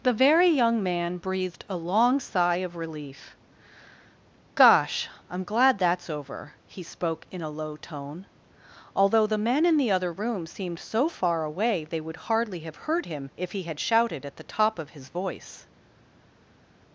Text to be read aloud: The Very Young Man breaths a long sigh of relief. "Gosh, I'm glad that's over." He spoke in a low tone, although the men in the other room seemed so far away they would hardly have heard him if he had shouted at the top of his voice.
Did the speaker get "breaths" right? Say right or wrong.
wrong